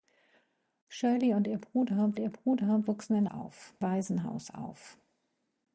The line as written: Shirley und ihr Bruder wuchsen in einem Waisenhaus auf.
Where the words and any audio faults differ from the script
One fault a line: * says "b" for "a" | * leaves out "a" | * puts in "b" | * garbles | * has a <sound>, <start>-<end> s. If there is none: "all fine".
* puts in "ihr Bruder"
* says "auf" for "einem"